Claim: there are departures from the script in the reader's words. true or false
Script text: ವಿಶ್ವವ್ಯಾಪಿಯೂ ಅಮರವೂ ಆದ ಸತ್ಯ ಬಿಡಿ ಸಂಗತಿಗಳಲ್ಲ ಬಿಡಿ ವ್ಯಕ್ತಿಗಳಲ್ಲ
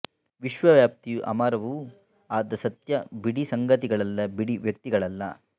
false